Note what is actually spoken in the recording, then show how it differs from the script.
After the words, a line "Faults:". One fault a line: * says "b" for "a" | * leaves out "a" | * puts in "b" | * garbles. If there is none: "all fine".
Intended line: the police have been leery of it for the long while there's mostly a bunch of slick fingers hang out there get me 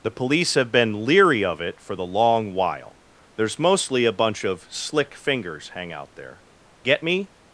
the police have been leery of it for the long while there's mostly a bunch of slick fingers hang out there get me
Faults:
all fine